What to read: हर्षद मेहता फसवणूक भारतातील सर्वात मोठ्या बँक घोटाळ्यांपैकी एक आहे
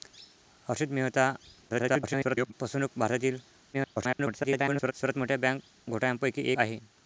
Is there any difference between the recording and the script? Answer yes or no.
yes